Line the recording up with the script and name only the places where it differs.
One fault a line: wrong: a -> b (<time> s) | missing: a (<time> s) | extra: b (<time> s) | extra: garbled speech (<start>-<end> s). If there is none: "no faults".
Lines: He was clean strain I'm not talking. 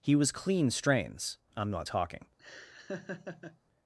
wrong: strain -> strains (0.7 s)